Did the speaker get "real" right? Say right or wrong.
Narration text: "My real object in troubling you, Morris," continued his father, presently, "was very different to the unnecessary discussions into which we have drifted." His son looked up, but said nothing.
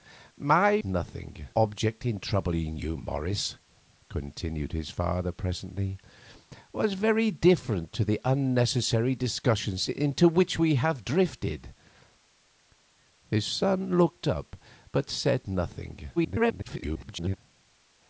wrong